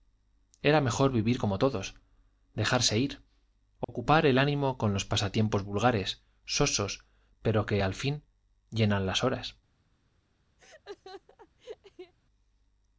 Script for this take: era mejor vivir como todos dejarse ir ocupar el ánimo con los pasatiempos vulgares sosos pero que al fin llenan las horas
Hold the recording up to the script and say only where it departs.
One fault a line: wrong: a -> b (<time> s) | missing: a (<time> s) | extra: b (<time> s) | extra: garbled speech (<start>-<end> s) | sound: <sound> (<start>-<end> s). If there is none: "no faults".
sound: dropout (3.8-3.9 s)
sound: laugh (10.6-12.1 s)